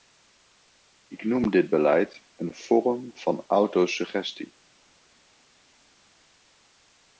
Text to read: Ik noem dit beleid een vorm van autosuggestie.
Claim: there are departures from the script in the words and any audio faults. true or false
false